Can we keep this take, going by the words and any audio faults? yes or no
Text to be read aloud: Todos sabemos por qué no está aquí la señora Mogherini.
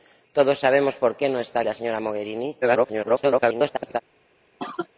no